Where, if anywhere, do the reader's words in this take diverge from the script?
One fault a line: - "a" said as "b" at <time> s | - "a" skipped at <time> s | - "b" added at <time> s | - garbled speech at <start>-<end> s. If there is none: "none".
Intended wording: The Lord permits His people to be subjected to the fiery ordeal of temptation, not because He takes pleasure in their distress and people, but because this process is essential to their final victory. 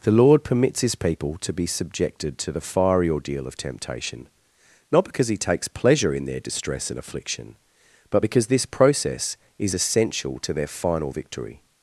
- "people" said as "affliction" at 7.0 s